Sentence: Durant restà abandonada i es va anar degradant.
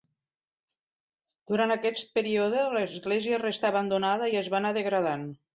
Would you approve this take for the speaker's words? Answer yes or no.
no